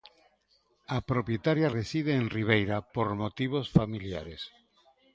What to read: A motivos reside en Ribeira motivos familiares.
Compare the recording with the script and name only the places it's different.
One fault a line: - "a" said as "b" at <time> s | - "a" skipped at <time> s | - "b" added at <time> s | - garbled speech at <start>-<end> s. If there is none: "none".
- "motivos" said as "propietaria" at 1.1 s
- "por" added at 2.9 s